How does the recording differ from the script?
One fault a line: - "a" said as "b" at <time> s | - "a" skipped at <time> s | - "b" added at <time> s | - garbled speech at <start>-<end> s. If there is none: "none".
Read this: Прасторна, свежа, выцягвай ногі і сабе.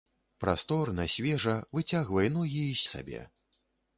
none